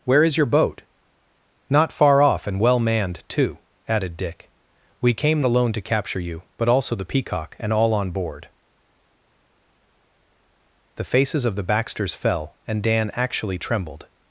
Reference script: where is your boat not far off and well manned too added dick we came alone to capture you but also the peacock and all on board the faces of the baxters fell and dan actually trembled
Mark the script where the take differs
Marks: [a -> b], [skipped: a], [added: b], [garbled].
where is your boat not far off and well manned too added dick we came alone to capture you but also the peacock and all on board the faces of the baxters fell and dan actually trembled